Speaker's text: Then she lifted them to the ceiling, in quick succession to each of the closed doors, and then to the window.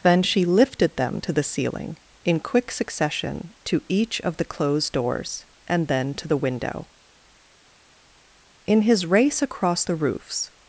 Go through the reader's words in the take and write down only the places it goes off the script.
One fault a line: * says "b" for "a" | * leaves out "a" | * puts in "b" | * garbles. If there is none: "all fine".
* puts in "In his race across the roofs"